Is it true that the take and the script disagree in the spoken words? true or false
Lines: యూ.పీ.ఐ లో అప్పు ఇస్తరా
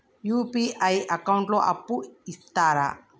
true